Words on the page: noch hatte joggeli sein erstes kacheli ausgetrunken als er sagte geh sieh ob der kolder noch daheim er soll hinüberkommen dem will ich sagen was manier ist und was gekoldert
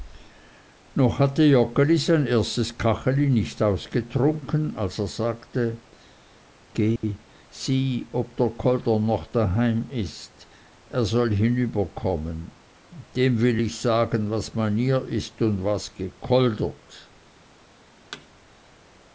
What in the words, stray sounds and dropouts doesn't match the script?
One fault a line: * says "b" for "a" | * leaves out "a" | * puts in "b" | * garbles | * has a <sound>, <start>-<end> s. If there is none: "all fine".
* puts in "nicht"
* has a dropout, 7.0-7.0 s
* puts in "ist"
* has a thud, 18.1-18.3 s